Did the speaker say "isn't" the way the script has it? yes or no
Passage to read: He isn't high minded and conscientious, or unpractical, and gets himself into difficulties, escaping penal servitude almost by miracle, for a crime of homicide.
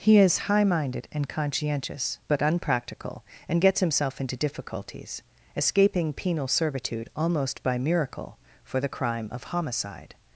no